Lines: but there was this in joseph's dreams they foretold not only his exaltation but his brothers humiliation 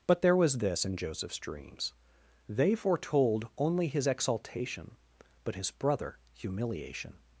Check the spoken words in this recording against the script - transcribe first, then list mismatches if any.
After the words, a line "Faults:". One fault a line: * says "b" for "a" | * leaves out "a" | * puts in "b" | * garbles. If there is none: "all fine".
but there was this in joseph's dreams they foretold only his exaltation but his brother humiliation
Faults:
* leaves out "not"
* says "brother" for "brothers"